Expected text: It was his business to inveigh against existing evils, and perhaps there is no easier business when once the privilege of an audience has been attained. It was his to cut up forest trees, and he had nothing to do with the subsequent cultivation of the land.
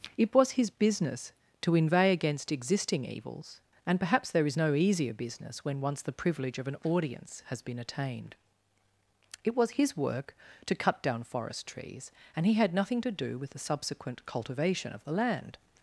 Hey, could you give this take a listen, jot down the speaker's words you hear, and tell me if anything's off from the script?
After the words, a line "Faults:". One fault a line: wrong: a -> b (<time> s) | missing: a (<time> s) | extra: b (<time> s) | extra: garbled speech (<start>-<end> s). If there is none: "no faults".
It was his business to inveigh against existing evils, and perhaps there is no easier business when once the privilege of an audience has been attained. It was his work to cut down forest trees, and he had nothing to do with the subsequent cultivation of the land.
Faults:
extra: work (10.0 s)
wrong: up -> down (11.0 s)